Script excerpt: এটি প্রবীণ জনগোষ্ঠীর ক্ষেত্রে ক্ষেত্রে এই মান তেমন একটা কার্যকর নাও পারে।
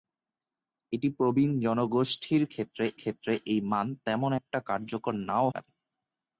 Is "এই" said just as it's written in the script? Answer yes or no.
yes